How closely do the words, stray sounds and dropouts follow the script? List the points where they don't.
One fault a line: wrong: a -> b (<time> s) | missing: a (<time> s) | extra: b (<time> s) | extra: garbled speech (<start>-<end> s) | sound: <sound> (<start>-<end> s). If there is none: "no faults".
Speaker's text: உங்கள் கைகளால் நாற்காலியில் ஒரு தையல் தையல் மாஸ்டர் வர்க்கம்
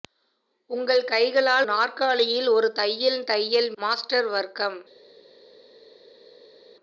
no faults